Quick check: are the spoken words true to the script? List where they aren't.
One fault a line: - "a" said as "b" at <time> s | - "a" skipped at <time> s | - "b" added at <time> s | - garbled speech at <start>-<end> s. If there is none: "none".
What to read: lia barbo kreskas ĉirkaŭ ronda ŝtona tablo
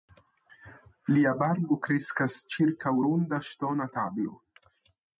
none